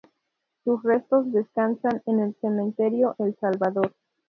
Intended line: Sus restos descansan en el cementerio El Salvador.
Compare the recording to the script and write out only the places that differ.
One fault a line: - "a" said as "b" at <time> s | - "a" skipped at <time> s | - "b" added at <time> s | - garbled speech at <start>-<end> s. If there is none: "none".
none